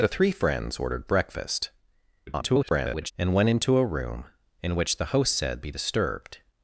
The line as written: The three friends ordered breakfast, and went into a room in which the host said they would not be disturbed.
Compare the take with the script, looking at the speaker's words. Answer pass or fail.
fail